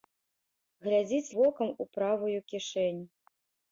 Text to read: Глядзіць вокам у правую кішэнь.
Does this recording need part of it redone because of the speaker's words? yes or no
no